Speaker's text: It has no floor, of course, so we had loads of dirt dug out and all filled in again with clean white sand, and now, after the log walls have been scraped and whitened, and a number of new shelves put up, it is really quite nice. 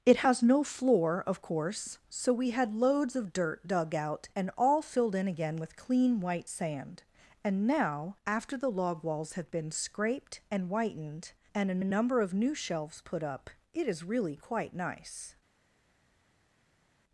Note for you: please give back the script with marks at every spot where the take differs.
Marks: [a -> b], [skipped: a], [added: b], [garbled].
It has no floor, of course, so we had loads of dirt dug out and all filled in again with clean white sand, and now, after the log walls have been scraped and whitened, and a [added: a] number of new shelves put up, it is really quite nice.